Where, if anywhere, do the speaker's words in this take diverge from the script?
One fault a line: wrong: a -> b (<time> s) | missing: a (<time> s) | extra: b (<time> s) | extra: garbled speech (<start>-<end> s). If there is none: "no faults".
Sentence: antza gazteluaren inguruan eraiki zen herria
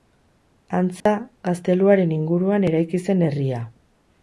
no faults